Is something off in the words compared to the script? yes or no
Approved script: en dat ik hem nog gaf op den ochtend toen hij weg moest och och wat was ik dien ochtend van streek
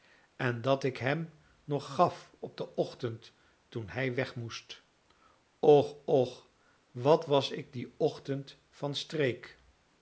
no